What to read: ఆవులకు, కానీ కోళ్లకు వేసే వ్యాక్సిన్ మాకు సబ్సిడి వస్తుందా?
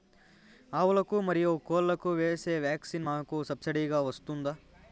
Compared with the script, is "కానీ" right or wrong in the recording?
wrong